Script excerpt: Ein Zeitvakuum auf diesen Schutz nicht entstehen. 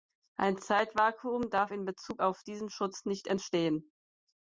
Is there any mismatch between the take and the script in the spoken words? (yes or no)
yes